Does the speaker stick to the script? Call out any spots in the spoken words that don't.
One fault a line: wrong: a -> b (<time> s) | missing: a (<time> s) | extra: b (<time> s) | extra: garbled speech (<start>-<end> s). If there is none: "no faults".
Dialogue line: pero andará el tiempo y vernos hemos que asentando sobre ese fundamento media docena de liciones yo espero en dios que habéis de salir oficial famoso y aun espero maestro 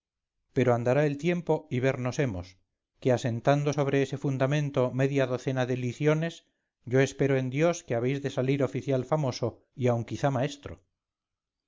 wrong: espero -> quizá (10.0 s)